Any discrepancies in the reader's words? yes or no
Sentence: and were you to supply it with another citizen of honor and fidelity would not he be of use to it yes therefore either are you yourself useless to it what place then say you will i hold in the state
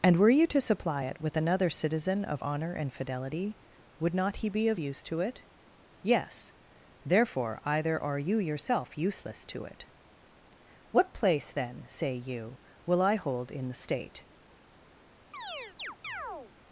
no